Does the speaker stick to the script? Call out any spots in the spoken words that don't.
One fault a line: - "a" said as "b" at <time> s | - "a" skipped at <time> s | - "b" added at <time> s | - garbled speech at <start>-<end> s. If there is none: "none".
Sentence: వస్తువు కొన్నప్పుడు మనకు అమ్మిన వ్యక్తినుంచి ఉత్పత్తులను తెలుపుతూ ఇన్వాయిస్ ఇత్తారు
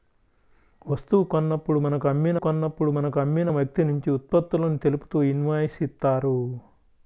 - "కొన్నప్పుడు మనకు అమ్మిన" added at 2.3 s